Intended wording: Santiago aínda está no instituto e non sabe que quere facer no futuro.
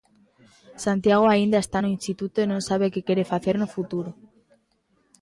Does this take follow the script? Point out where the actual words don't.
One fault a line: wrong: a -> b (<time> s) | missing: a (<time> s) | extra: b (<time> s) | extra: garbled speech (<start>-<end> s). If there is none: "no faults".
no faults